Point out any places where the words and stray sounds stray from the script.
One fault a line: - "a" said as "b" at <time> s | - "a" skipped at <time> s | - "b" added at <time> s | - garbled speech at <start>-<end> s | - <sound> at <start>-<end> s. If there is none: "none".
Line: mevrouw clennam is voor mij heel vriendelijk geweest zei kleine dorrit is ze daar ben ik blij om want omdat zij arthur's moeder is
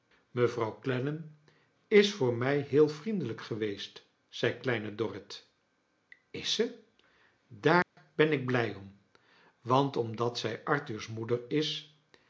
- dropout at 7.8-8.0 s